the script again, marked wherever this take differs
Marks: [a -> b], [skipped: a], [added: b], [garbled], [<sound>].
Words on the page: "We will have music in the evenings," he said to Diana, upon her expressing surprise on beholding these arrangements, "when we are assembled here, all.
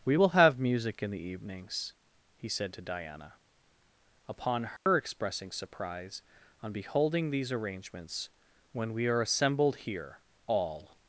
"We will have music in the evenings," he said to Diana, upon her [dropout] expressing surprise on beholding these arrangements, "when we are assembled here, all.